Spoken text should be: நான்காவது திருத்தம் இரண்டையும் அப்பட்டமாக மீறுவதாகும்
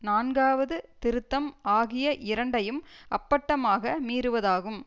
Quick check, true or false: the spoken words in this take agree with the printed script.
false